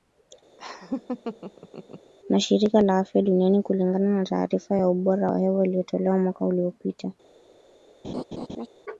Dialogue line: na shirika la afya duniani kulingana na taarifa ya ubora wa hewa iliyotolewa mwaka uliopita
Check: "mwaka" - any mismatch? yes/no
no